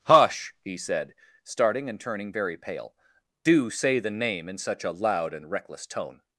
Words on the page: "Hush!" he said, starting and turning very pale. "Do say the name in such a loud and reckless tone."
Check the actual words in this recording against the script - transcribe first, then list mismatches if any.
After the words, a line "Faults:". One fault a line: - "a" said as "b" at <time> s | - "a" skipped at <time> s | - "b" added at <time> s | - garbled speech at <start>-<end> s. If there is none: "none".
"Hush!" he said, starting and turning very pale. "Do say the name in such a loud and reckless tone."
Faults:
none